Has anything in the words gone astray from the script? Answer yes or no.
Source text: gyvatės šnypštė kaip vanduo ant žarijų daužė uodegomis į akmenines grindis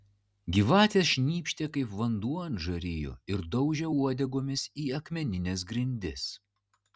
yes